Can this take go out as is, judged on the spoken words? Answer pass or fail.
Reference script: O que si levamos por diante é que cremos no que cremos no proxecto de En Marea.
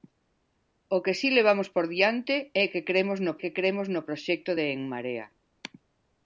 pass